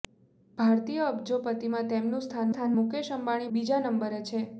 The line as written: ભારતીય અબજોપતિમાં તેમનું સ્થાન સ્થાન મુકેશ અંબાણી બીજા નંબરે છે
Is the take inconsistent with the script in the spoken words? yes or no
no